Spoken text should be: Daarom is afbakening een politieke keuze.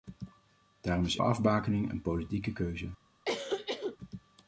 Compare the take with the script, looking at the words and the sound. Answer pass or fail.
fail